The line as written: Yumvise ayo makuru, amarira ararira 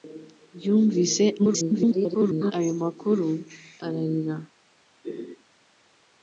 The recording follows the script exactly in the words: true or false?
false